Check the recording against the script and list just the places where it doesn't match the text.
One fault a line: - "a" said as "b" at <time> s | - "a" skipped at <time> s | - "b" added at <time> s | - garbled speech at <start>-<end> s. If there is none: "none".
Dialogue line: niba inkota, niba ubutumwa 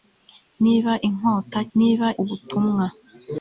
none